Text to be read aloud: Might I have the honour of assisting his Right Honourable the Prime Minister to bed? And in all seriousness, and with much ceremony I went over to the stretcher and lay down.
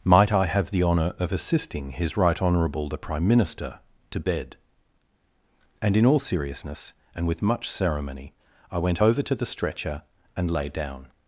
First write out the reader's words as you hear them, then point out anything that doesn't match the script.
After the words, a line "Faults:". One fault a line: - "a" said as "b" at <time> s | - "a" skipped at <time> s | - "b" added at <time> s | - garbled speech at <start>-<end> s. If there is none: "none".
Might I have the honour of assisting his Right Honourable the Prime Minister to bed? And in all seriousness, and with much ceremony I went over to the stretcher and lay down.
Faults:
none